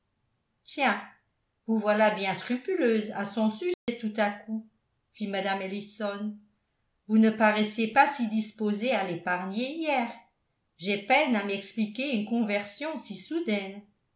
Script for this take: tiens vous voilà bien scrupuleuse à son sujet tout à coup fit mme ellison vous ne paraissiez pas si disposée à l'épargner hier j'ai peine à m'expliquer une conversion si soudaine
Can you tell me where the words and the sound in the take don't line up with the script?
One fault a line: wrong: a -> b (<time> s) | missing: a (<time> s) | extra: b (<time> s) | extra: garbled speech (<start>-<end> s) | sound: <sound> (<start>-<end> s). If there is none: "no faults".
sound: dropout (3.7-3.9 s)